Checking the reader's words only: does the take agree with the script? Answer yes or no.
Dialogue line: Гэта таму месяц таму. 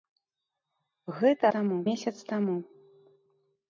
yes